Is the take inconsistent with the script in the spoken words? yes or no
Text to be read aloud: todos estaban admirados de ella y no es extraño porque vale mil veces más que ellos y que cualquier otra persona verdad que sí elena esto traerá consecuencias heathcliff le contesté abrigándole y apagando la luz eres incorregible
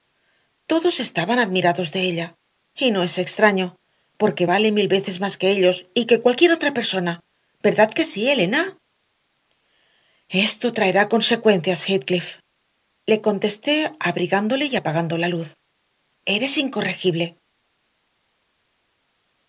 no